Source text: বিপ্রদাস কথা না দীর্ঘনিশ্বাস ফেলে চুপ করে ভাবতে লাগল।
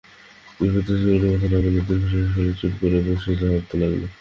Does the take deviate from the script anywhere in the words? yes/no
yes